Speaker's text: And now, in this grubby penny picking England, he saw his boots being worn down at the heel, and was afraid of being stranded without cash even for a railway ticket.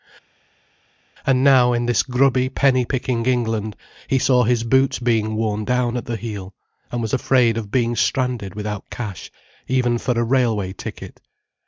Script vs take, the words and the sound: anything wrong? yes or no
no